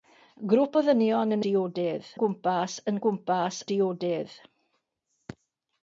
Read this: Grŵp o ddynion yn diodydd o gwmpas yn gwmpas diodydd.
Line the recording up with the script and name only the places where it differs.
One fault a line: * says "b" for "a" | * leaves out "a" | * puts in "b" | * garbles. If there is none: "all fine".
all fine